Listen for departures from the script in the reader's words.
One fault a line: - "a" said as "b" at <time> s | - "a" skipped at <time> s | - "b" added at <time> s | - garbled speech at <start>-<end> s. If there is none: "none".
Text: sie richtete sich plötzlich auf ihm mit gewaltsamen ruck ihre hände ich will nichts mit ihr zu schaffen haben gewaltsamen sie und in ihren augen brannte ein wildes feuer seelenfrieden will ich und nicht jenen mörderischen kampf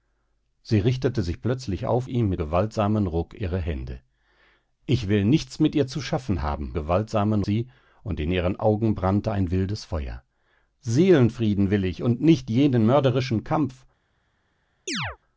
none